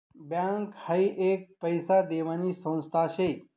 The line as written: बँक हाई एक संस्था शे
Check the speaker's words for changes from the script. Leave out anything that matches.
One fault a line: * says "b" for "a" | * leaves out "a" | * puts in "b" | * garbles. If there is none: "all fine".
* puts in "पैसा देवानी"